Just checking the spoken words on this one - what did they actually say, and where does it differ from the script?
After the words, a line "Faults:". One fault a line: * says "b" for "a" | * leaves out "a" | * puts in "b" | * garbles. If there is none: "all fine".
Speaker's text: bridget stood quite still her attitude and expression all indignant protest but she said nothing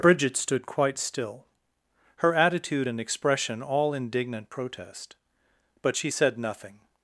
bridget stood quite still her attitude and expression all indignant protest but she said nothing
Faults:
all fine